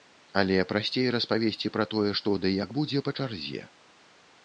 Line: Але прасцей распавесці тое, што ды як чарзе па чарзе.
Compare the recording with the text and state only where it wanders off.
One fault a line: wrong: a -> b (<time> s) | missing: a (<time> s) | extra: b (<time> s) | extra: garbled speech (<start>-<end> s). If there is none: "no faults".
extra: пра (1.8 s)
wrong: чарзе -> будзе (2.8 s)